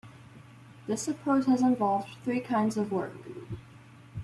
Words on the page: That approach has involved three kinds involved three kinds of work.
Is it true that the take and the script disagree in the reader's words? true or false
true